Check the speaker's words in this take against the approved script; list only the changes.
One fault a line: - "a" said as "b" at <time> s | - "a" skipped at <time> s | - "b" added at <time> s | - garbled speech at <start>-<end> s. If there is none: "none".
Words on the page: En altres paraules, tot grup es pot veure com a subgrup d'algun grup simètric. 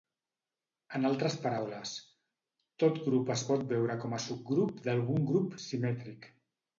none